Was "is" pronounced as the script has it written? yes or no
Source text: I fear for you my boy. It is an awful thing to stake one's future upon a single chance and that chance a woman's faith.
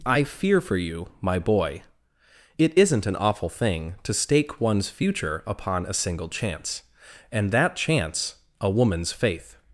no